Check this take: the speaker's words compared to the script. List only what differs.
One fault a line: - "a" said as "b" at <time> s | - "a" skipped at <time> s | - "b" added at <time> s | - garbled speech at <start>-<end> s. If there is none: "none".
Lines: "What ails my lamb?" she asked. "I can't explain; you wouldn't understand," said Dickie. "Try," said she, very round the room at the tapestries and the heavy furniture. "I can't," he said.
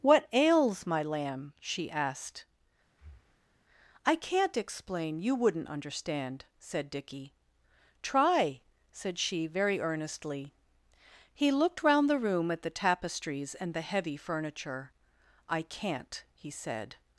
- "earnestly He looked" added at 9.8 s